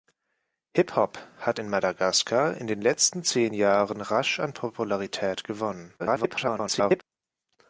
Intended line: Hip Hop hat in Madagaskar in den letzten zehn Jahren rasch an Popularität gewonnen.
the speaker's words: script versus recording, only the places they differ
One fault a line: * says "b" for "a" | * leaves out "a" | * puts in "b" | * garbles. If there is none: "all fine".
* garbles